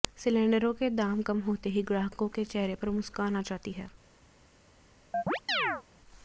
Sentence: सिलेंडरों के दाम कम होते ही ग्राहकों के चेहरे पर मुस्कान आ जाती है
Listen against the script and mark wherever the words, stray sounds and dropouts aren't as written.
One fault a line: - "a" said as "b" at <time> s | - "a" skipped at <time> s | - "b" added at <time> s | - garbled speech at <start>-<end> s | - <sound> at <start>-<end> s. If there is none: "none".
- chirp at 5.1-5.8 s